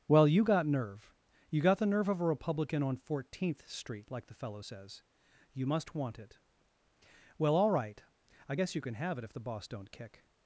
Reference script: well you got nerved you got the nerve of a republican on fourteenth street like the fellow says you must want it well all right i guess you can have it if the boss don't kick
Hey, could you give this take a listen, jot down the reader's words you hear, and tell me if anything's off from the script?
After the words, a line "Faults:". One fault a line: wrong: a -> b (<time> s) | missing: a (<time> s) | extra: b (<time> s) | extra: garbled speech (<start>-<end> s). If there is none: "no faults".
well you got nerve you got the nerve of a republican on fourteenth street like the fellow says you must want it well all right i guess you can have it if the boss don't kick
Faults:
wrong: nerved -> nerve (0.7 s)